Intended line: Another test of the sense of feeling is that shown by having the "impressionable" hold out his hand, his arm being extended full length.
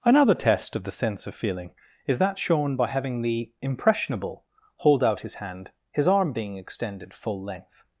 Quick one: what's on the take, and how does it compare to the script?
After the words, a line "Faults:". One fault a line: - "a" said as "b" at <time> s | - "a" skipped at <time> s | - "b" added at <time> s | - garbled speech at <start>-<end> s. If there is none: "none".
Another test of the sense of feeling is that shown by having the "impressionable" hold out his hand, his arm being extended full length.
Faults:
none